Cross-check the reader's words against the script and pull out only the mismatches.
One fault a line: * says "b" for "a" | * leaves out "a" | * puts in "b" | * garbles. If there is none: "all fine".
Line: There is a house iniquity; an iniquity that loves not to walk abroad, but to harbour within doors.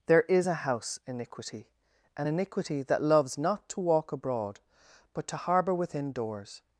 all fine